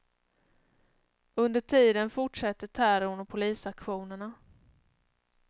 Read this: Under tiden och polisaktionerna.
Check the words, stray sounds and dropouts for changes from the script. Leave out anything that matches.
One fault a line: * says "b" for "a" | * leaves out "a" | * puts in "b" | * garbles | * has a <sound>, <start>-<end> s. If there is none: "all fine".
* puts in "fortsätter terrorn"